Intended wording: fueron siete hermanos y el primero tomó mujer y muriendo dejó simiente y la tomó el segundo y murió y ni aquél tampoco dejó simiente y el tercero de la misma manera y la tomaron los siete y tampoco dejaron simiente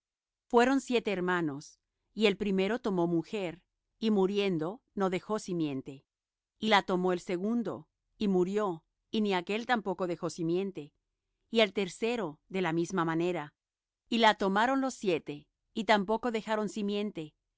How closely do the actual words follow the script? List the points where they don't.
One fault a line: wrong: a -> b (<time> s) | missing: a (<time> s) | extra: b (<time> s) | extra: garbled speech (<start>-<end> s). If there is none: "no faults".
extra: no (5.0 s)